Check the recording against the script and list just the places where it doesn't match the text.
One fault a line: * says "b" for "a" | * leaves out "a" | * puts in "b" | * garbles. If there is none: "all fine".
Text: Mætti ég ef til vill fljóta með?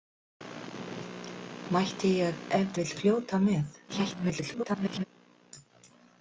* leaves out "til"
* garbles